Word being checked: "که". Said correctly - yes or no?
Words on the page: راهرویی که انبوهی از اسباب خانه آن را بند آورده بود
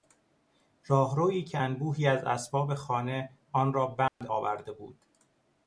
yes